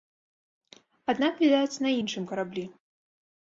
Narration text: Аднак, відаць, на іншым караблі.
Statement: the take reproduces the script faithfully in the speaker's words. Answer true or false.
true